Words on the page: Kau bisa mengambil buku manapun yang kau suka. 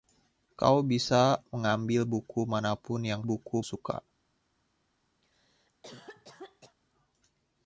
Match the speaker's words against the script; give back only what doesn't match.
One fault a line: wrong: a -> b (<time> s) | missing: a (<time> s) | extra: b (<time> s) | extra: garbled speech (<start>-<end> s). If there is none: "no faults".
wrong: kau -> buku (3.3 s)